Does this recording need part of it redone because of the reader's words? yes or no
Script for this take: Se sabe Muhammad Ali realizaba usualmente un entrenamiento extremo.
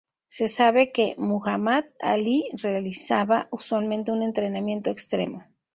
yes